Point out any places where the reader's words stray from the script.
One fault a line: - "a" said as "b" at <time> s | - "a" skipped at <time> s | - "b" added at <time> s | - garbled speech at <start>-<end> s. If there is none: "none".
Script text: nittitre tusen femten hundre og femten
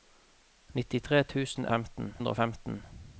none